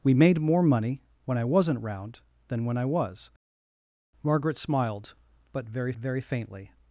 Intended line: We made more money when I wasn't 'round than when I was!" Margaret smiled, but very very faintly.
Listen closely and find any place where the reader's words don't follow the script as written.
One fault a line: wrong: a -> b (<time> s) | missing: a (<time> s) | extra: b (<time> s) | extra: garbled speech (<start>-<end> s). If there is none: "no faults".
no faults